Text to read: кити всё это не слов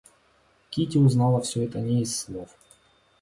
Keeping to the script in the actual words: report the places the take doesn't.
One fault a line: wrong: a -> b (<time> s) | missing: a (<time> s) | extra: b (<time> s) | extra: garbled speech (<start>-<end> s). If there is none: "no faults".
extra: узнала (1.0 s)
extra: из (2.0 s)